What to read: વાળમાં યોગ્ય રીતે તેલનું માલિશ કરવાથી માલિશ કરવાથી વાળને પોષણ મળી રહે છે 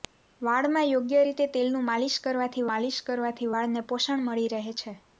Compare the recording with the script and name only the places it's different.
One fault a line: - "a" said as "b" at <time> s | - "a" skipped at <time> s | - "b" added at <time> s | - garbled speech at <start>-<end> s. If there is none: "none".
none